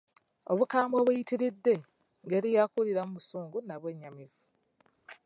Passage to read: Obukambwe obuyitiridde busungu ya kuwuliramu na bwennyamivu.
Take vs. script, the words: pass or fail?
fail